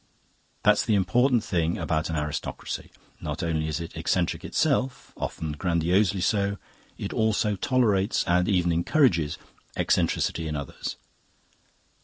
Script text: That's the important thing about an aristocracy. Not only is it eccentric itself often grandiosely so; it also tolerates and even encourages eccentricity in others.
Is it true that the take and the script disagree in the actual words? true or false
false